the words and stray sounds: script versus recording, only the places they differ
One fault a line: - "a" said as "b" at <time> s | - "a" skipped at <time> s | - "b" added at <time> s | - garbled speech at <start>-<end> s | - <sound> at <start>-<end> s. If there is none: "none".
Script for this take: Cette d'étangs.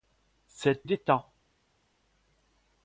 none